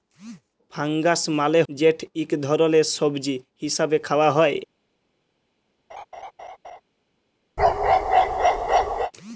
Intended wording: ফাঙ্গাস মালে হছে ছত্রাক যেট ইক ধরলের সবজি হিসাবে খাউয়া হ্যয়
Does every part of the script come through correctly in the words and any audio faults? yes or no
no